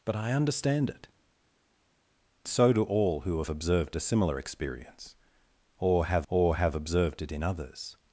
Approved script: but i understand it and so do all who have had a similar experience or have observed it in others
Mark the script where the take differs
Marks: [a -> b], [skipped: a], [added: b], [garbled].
but i understand it [skipped: and] so do all who have [had -> observed] a similar experience or have [added: or have] observed it in others